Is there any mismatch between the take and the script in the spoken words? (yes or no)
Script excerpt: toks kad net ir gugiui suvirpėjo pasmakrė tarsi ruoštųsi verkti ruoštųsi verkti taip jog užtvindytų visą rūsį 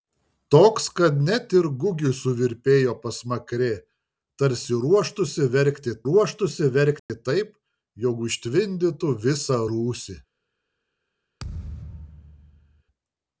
no